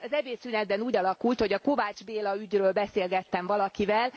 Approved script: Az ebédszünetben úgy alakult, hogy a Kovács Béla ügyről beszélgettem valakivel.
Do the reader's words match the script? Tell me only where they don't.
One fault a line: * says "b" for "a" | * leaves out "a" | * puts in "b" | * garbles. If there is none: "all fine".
all fine